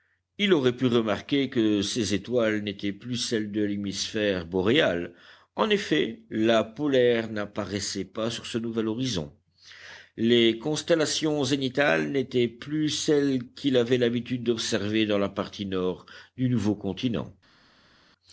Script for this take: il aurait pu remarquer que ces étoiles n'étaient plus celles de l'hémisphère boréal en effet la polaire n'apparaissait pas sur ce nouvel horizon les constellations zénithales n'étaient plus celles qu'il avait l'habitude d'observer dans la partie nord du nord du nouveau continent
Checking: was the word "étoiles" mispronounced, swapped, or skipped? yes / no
no